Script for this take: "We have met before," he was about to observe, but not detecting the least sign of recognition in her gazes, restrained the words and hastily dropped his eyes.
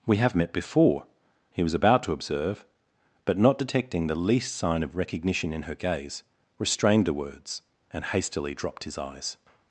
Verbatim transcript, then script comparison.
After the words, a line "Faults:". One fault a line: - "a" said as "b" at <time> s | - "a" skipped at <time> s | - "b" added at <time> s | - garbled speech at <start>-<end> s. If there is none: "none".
"We have met before," he was about to observe, but not detecting the least sign of recognition in her gaze, restrained the words and hastily dropped his eyes.
Faults:
- "gazes" said as "gaze" at 5.8 s